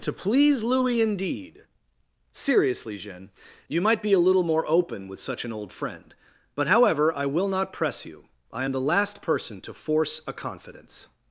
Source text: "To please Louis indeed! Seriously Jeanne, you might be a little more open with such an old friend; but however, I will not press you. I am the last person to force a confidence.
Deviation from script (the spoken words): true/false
false